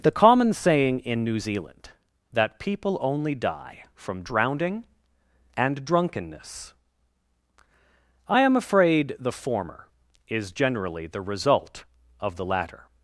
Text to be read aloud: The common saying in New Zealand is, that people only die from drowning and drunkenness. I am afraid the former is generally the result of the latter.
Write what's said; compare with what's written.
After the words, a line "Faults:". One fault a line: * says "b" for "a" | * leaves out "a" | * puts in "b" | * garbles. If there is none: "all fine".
The common saying in New Zealand that people only die from drowning and drunkenness. I am afraid the former is generally the result of the latter.
Faults:
* leaves out "is"